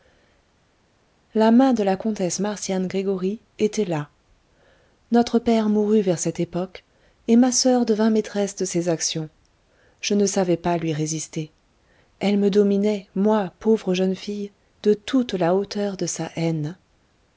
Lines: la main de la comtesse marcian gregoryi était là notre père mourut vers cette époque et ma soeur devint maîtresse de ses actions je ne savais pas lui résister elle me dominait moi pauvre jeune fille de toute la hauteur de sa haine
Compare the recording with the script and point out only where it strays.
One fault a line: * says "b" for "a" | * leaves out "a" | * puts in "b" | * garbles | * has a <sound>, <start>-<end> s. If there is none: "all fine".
all fine